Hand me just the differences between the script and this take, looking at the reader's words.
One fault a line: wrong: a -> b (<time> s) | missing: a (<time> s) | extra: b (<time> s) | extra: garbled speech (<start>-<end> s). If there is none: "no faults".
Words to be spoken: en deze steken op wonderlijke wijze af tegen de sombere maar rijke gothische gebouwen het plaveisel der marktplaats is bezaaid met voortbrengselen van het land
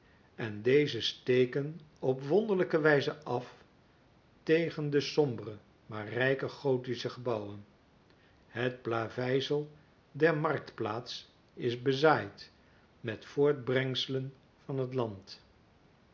no faults